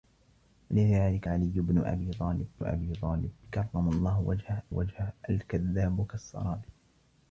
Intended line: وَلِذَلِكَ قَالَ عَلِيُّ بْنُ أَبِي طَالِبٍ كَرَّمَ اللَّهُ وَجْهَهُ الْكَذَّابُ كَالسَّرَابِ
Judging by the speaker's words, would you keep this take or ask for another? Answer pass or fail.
fail